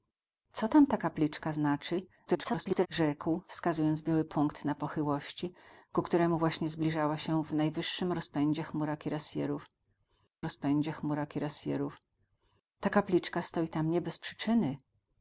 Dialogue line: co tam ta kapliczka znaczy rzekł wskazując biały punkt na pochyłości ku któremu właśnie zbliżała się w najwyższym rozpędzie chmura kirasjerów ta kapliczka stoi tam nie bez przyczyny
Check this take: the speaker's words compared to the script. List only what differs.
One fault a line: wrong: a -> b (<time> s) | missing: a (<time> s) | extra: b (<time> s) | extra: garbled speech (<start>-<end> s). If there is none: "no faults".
extra: garbled speech (2.3-2.9 s)
extra: rozpędzie chmura kirasjerów (10.4 s)